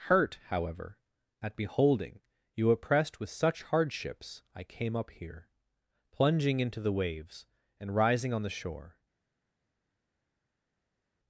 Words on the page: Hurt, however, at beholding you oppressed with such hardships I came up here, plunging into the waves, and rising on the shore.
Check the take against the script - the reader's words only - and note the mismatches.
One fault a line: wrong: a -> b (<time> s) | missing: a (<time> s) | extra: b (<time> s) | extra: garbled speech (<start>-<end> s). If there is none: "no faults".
no faults